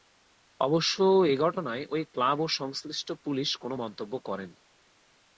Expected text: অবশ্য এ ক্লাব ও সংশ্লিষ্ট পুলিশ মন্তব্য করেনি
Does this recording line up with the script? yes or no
no